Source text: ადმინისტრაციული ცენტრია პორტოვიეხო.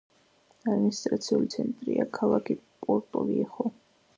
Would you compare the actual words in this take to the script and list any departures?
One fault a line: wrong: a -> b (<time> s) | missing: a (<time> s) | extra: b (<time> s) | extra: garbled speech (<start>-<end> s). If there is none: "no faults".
extra: ქალაქი (2.2 s)